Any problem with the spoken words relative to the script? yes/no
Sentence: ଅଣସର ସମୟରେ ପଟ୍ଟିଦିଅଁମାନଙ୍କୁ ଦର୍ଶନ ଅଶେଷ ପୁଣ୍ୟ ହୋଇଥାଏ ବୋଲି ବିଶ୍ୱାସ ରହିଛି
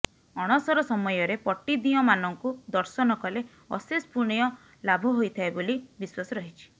yes